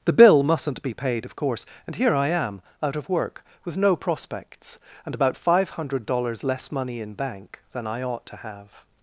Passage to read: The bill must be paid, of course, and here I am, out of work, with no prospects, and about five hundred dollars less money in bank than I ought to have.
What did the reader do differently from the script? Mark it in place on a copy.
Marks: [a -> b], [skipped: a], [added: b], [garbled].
The bill [must -> mustn't] be paid, of course, and here I am, out of work, with no prospects, and about five hundred dollars less money in bank than I ought to have.